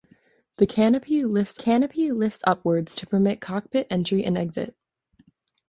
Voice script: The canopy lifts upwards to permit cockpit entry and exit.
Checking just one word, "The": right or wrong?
right